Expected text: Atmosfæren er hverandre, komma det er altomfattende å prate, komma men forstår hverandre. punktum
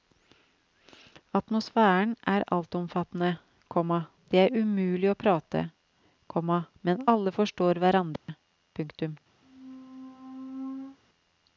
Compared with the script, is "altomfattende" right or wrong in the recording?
wrong